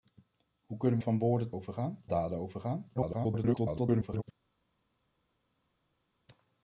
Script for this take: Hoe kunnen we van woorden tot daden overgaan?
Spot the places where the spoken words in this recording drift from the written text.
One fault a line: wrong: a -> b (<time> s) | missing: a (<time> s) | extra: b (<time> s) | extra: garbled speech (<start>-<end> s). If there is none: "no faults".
missing: we (1.0 s)
wrong: tot -> overgaan (1.5 s)
extra: garbled speech (2.9-4.2 s)